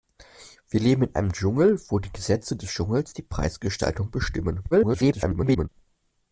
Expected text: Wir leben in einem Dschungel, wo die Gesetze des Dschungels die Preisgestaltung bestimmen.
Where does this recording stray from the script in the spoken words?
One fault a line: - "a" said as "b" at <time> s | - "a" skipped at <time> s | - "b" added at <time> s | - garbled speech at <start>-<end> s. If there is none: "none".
- garbled speech at 4.7-5.7 s